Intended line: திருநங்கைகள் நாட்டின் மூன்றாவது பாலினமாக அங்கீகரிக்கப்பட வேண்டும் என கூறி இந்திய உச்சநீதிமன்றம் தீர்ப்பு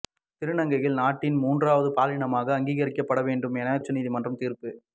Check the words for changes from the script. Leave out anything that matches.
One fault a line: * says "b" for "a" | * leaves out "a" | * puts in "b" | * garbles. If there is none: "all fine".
* leaves out "கூறி இந்திய"